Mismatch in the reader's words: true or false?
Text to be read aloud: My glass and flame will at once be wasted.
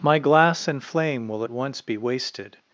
false